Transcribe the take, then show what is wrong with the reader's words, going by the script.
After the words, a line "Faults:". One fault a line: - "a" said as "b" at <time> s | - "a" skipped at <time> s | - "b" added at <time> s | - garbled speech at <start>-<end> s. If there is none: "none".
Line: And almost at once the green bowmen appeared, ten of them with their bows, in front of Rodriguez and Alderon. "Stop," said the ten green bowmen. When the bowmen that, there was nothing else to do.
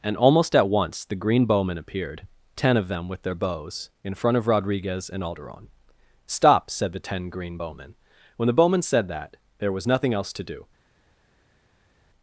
And almost at once the green bowmen appeared, ten of them with their bows, in front of Rodriguez and Alderon. "Stop," said the ten green bowmen. When the bowmen said that, there was nothing else to do.
Faults:
- "said" added at 8.8 s